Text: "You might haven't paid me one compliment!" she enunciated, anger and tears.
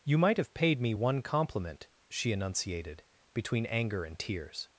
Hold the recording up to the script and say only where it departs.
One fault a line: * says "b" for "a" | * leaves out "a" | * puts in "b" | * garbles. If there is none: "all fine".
* says "have" for "haven't"
* puts in "between"